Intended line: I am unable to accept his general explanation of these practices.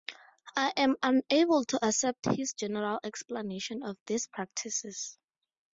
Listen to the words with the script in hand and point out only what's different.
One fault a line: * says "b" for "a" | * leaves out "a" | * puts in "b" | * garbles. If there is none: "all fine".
all fine